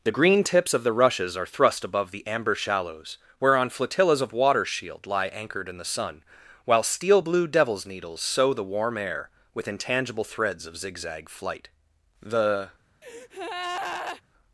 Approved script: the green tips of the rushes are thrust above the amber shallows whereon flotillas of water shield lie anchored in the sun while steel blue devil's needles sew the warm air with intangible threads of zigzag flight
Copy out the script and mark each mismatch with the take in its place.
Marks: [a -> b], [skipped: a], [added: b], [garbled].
the green tips of the rushes are thrust above the amber shallows whereon flotillas of water shield lie anchored in the sun while steel blue devil's needles sew the warm air with intangible threads of zigzag flight [added: the]